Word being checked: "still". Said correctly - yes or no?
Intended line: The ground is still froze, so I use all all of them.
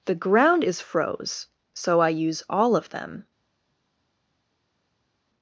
no